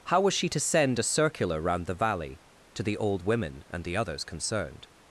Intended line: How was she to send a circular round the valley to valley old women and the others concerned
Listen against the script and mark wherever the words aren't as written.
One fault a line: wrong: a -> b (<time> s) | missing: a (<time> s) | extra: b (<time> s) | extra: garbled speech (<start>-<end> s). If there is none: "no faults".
wrong: valley -> the (2.8 s)